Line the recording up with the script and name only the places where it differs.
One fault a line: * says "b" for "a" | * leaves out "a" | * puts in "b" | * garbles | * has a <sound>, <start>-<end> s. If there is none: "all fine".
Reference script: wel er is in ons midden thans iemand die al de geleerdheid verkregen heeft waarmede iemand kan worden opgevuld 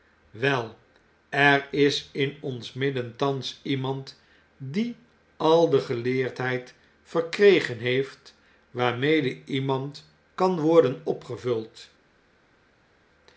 all fine